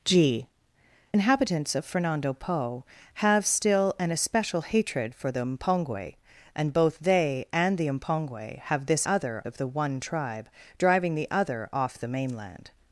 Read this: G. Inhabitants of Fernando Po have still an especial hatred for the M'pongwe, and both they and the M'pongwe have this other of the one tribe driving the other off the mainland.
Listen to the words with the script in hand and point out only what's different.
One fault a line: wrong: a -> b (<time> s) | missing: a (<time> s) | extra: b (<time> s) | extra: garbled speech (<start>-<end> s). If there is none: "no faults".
no faults